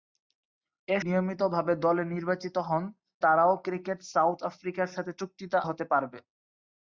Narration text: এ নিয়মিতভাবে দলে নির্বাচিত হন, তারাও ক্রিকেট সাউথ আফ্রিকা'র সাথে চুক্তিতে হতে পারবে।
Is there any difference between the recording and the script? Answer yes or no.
no